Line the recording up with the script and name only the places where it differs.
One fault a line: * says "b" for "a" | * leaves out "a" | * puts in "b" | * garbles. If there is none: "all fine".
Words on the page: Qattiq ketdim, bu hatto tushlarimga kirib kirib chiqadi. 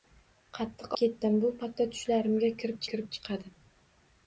all fine